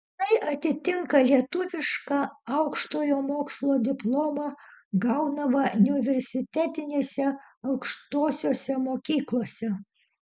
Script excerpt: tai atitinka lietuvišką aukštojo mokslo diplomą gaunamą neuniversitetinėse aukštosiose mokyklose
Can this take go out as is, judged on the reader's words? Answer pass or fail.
pass